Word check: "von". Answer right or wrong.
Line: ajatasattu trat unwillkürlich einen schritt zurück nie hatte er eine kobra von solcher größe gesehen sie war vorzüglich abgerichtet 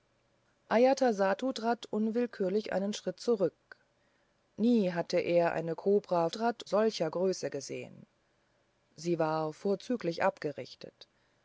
wrong